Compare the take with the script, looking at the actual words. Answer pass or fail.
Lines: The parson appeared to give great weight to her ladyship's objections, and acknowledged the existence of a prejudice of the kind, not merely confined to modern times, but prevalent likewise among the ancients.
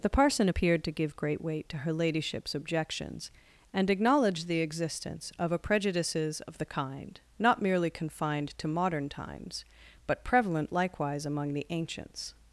fail